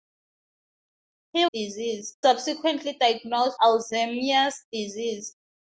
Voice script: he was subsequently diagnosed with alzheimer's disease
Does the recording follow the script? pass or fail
fail